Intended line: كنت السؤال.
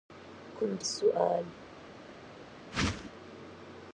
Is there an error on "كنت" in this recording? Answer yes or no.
no